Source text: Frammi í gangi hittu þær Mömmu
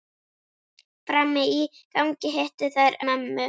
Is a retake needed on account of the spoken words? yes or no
no